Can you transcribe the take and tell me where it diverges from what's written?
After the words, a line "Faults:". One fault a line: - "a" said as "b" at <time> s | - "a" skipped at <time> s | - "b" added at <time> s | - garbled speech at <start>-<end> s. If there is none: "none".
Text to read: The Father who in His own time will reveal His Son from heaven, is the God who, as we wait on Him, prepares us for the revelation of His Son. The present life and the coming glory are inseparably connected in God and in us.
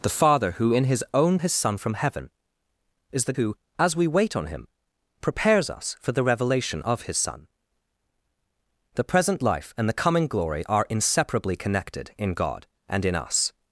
The Father who in His own His Son from heaven, is the Who, as we wait on Him, prepares us for the revelation of His Son. The present life and the coming glory are inseparably connected in God and in us.
Faults:
- "time will reveal" skipped at 1.4 s
- "God" skipped at 3.3 s